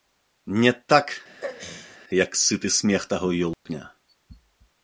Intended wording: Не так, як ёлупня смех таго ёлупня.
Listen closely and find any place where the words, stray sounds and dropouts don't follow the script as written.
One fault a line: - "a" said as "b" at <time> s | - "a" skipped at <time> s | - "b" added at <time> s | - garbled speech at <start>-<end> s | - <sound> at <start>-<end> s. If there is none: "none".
- throat clearing at 1.4-2.0 s
- "ёлупня" said as "сыты" at 2.4 s
- dropout at 3.5-3.7 s